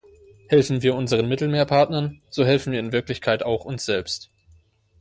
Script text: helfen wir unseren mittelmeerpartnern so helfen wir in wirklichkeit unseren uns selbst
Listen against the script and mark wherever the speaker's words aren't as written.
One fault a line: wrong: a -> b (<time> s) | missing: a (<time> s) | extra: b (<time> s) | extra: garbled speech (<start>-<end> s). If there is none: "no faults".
wrong: unseren -> auch (3.4 s)